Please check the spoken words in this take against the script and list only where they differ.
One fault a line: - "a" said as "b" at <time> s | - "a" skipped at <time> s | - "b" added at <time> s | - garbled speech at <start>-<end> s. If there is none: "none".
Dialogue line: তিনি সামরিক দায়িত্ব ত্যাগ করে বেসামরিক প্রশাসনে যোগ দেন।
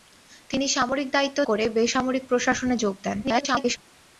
- "ত্যাগ" skipped at 1.4 s
- garbled speech at 3.2-3.8 s